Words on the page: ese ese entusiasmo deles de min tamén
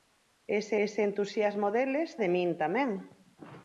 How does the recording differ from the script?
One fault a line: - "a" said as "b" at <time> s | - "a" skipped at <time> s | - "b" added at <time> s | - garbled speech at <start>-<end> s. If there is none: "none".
none